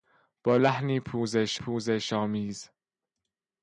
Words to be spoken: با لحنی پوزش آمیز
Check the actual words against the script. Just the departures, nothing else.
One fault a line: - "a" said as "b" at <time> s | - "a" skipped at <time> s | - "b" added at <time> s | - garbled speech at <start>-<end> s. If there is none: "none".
- "پوزش" added at 1.5 s